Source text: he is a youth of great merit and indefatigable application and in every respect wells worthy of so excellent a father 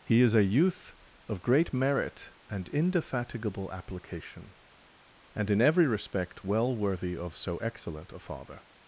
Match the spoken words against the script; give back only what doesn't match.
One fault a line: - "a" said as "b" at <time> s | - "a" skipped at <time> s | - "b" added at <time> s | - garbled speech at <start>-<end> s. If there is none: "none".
- "wells" said as "well" at 6.4 s